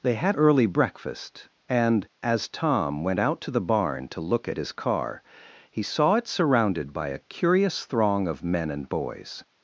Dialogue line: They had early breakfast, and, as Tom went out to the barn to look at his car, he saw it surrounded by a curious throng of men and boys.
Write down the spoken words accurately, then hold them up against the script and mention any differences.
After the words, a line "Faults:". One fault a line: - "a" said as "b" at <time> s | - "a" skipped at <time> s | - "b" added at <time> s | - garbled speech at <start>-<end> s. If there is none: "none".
They had early breakfast, and, as Tom went out to the barn to look at his car, he saw it surrounded by a curious throng of men and boys.
Faults:
none